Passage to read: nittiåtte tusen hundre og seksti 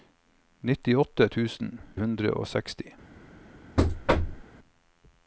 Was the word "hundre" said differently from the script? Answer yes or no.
no